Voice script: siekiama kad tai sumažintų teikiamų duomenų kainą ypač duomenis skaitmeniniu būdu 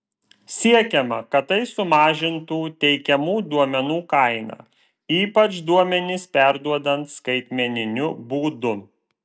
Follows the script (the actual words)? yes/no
no